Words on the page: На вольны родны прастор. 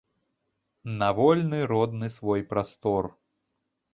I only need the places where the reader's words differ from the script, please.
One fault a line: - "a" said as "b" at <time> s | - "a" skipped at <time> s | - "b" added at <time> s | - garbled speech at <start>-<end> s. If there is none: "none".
- "свой" added at 2.1 s